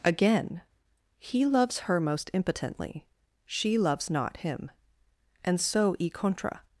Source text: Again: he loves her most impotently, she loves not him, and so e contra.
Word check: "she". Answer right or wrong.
right